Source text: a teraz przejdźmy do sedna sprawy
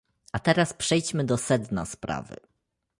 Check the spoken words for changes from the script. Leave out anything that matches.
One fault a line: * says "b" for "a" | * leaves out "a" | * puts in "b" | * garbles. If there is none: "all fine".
all fine